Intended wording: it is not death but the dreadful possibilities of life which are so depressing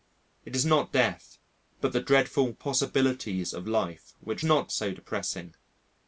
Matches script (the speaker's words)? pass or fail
fail